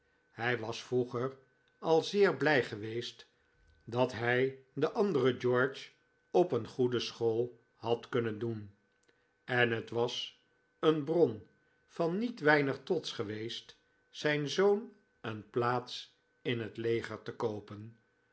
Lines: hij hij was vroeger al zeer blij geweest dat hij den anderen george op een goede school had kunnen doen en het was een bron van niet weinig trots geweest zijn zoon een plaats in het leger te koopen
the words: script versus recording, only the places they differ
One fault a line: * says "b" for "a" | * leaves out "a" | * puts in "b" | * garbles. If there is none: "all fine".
* leaves out "hij"